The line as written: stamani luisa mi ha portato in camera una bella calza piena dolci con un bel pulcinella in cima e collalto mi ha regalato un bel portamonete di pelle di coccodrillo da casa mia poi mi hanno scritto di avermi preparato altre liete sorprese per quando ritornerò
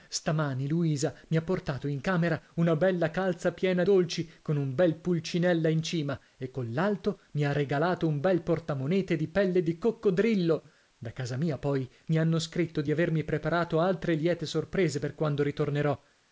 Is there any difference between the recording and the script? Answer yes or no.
no